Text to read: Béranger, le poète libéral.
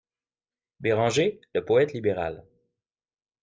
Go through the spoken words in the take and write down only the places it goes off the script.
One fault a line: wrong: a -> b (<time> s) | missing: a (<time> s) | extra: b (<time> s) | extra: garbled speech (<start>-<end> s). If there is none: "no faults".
no faults